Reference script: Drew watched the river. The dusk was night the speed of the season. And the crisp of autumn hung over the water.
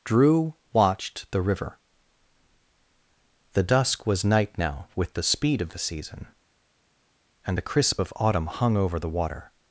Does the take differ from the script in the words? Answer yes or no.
yes